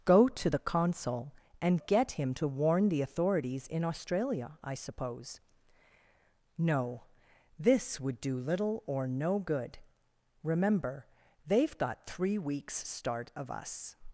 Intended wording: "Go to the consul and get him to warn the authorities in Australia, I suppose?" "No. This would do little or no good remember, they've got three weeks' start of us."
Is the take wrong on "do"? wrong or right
right